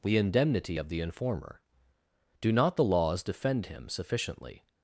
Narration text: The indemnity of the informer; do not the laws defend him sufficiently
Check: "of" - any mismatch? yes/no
no